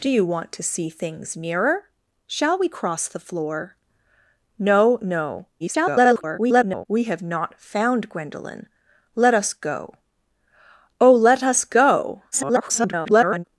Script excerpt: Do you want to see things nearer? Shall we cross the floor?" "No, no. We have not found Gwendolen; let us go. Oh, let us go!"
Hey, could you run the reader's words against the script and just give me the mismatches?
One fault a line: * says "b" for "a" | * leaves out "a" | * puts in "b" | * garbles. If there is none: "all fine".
* garbles
* garbles